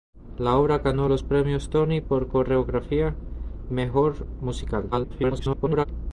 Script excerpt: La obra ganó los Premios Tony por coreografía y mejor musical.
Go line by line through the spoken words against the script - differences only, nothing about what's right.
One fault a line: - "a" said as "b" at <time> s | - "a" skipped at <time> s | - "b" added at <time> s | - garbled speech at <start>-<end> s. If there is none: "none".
- "y" skipped at 3.1 s
- garbled speech at 4.9-5.9 s